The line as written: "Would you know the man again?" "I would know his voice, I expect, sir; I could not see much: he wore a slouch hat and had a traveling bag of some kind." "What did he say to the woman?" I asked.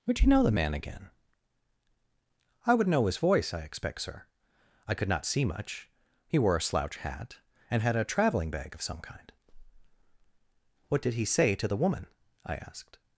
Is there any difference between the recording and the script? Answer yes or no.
no